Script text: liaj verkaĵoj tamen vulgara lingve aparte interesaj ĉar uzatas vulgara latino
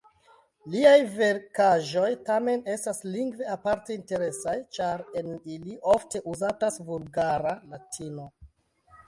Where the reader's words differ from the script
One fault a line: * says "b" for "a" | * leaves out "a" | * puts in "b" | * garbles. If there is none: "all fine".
* says "estas" for "vulgara"
* puts in "en ili ofte"